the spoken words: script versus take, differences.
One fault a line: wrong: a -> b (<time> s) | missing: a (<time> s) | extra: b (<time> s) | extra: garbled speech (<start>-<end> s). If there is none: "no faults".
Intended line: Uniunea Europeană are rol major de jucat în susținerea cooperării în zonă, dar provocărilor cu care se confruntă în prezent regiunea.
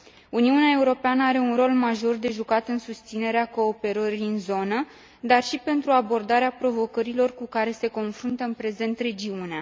extra: un (1.4 s)
extra: și pentru abordarea (5.4 s)